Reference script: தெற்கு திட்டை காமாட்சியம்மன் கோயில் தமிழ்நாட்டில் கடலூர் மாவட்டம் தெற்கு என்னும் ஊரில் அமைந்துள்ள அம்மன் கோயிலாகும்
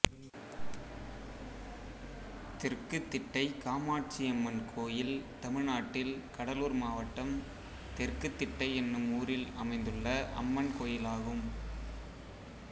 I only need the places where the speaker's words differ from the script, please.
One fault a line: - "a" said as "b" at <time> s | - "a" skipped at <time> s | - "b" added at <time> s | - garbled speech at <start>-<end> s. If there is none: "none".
- "திட்டை" added at 8.3 s